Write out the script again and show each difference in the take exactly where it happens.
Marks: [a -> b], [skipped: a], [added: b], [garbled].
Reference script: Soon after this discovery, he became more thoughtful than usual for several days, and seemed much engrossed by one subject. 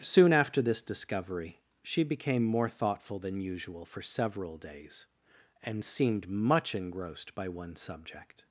Soon after this discovery, [he -> she] became more thoughtful than usual for several days, and seemed much engrossed by one subject.